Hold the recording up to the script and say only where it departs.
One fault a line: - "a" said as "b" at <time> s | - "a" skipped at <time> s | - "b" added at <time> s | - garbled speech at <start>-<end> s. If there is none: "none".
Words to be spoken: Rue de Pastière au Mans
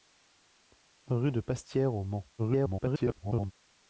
- garbled speech at 2.4-3.5 s